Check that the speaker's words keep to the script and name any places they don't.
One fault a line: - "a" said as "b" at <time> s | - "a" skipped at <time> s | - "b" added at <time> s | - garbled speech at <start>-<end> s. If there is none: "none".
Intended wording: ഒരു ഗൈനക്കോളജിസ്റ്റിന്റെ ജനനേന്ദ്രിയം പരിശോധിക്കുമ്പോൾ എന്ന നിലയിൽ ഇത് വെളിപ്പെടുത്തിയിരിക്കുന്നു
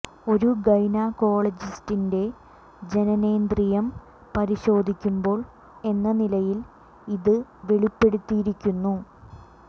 none